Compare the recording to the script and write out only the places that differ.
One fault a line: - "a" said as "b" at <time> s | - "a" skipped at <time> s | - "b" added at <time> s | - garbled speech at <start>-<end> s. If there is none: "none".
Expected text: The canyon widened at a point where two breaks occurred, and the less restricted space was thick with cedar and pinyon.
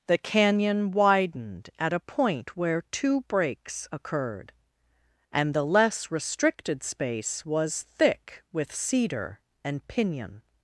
none